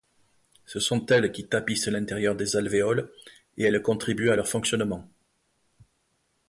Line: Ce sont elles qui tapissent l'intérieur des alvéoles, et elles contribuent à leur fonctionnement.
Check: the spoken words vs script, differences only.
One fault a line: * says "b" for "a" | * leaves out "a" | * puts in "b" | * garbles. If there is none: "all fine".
all fine